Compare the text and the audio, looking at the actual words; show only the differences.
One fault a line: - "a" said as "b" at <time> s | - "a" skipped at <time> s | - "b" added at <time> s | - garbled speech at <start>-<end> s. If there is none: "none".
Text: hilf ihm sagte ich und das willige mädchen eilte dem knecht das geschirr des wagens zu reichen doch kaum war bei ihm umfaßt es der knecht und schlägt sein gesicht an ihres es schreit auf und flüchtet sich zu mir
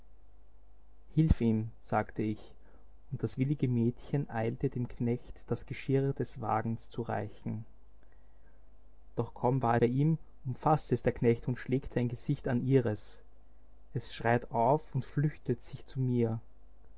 none